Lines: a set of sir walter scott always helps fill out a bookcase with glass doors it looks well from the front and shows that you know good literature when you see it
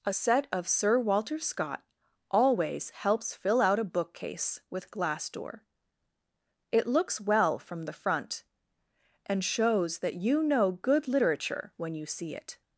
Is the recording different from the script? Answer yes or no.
yes